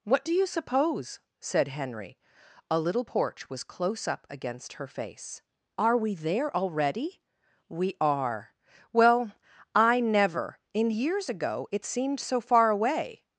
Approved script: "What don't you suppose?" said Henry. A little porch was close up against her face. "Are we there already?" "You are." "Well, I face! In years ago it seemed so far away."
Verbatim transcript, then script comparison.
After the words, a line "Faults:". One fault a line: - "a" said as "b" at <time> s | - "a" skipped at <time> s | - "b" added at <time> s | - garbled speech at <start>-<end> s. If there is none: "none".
"What do you suppose?" said Henry. A little porch was close up against her face. "Are we there already?" "We are." "Well, I never! In years ago it seemed so far away."
Faults:
- "don't" said as "do" at 0.2 s
- "You" said as "We" at 7.7 s
- "face" said as "never" at 10.0 s